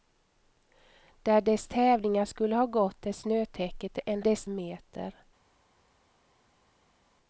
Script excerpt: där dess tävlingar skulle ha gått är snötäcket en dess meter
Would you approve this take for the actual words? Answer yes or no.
yes